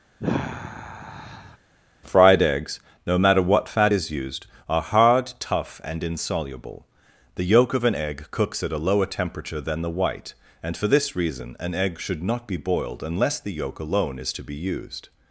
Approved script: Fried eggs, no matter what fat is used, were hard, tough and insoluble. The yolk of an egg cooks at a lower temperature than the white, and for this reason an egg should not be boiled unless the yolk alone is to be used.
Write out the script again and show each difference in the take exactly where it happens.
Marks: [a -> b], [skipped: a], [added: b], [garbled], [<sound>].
[sigh] Fried eggs, no matter what fat is used, [were -> are] hard, tough and insoluble. The yolk of an egg cooks at a lower temperature than the white, and for this reason an egg should not be boiled unless the yolk alone is to be used.